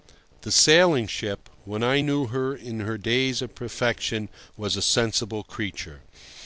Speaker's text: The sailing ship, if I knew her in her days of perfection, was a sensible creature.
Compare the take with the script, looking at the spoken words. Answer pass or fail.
fail